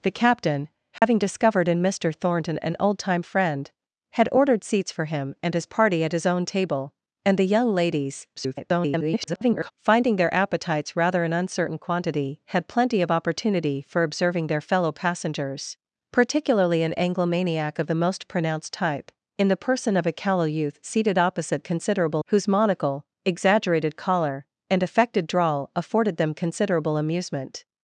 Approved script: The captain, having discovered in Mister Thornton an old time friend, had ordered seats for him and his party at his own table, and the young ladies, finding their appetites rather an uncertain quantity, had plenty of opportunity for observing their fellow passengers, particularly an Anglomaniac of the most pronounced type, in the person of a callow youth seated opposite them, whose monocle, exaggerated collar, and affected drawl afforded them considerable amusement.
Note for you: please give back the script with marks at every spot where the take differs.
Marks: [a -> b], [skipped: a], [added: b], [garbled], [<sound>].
The captain, having [dropout] discovered in Mister Thornton an old time friend, had ordered seats for him and his party at his own table, and the young ladies, [garbled] finding their appetites rather an uncertain quantity, had plenty of opportunity for observing their fellow passengers, particularly an Anglomaniac of the most pronounced type, in the person of a callow youth seated opposite [them, -> considerable] whose monocle, exaggerated collar, and affected drawl afforded them considerable amusement.